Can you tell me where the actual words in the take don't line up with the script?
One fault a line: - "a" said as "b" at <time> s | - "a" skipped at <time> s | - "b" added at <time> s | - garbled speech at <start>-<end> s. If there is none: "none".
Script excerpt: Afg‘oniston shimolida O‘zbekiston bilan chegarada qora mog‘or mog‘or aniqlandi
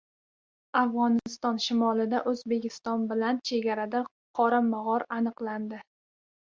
- "mog‘or" skipped at 5.1 s